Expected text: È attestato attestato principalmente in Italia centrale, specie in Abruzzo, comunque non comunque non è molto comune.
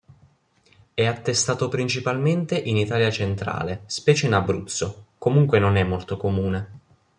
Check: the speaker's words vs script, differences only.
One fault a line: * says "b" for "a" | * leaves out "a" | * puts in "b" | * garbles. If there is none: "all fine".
* leaves out "attestato"
* leaves out "comunque non"